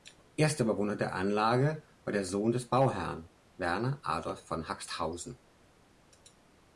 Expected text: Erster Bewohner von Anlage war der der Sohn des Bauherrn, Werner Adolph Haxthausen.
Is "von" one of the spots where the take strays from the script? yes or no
yes